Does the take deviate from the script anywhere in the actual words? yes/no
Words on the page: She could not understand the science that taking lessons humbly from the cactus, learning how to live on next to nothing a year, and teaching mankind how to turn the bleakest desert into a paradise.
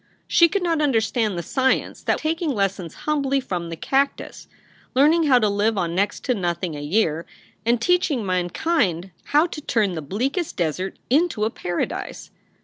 no